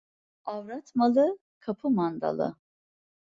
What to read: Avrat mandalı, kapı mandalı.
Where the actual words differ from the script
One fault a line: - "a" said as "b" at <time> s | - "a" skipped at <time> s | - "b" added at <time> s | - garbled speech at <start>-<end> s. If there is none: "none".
- "mandalı" said as "malı" at 0.9 s